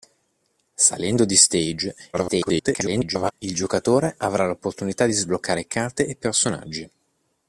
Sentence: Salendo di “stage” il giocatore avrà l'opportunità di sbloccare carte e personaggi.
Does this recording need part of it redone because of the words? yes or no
yes